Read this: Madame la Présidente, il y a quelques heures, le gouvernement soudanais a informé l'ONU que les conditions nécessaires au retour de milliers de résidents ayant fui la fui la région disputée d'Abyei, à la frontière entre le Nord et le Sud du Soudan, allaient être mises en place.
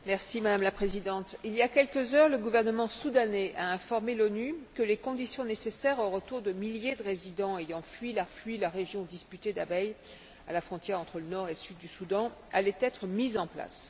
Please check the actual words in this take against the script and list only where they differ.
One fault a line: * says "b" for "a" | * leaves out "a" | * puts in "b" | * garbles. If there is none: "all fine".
all fine